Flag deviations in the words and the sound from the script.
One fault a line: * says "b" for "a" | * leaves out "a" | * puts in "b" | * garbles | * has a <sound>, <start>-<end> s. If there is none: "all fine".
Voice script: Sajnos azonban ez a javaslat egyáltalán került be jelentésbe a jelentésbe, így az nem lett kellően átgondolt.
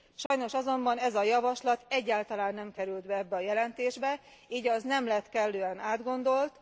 * has a dropout, 0.3-0.3 s
* puts in "nem"
* says "ebbe" for "jelentésbe"